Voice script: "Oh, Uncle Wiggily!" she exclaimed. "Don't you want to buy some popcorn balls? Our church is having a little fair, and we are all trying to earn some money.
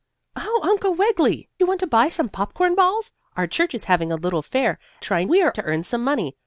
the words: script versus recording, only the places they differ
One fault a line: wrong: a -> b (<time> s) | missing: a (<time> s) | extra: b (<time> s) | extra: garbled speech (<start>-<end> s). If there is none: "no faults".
missing: she exclaimed Don't (1.5 s)
wrong: and -> trying (5.0 s)
missing: all trying (5.5 s)